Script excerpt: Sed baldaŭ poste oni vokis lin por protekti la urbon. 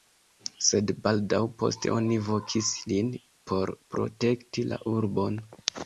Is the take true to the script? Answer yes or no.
yes